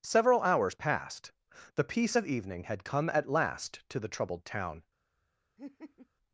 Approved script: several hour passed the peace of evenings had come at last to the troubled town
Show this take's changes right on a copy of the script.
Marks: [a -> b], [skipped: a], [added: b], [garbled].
several [hour -> hours] passed the peace of [evenings -> evening] had come at last to the troubled town